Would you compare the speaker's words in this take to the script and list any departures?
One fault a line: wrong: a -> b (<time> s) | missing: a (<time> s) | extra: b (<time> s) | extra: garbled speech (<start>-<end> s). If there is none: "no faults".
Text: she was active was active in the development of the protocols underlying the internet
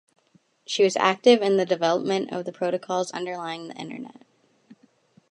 missing: was active (1.4 s)